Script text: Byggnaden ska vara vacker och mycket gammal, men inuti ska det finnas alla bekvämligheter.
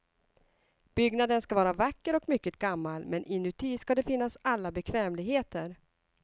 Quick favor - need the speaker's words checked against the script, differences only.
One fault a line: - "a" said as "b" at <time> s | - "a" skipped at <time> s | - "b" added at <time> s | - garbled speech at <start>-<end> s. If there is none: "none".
none